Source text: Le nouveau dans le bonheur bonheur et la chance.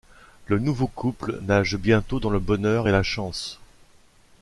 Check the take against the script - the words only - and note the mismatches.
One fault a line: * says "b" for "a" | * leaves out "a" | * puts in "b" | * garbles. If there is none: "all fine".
* puts in "couple nage bientôt"
* leaves out "bonheur"